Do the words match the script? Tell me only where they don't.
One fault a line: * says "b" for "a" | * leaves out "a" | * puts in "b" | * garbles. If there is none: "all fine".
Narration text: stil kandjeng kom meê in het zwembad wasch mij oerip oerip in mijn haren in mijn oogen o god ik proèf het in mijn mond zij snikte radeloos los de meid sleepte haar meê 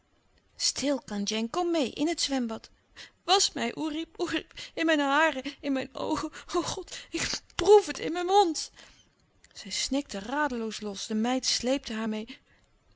all fine